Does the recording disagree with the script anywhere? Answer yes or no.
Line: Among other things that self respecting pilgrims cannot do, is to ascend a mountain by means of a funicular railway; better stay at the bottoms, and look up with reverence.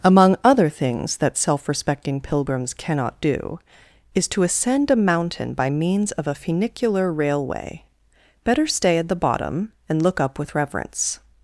yes